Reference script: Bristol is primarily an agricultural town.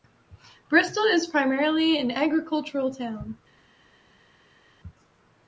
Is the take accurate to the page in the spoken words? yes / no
yes